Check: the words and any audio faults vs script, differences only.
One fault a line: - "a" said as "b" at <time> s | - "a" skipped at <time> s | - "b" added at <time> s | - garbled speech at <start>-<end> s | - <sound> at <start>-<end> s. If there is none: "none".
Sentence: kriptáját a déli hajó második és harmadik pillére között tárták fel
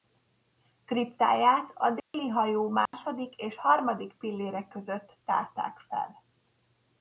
- dropout at 2.0-2.1 s
- dropout at 2.9-2.9 s